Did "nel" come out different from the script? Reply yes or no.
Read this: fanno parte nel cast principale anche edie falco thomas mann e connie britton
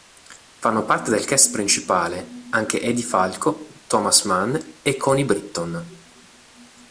yes